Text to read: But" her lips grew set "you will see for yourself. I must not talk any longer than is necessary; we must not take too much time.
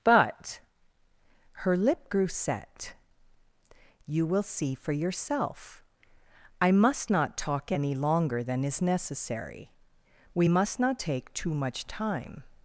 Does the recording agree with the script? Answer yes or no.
no